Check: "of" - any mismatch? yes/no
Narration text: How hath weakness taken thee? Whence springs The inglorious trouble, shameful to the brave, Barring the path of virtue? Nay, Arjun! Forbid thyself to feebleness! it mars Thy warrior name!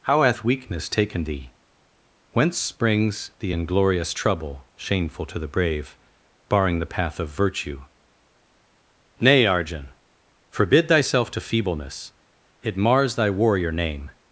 no